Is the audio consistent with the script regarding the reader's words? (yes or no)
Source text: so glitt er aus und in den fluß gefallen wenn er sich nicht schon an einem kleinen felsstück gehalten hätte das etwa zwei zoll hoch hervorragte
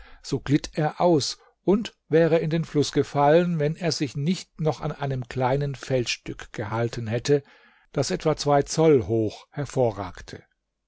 no